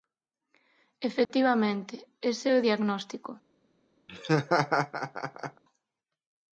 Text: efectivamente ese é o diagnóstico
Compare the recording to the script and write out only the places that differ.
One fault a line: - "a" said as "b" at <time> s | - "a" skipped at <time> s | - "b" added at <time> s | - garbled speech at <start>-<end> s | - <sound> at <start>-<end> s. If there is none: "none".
- dropout at 1.2-1.3 s
- laugh at 4.1-5.6 s